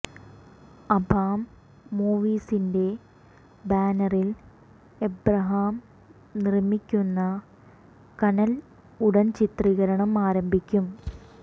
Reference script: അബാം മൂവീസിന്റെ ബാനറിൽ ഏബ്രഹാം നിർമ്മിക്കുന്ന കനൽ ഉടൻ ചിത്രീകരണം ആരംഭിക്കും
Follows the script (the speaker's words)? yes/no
yes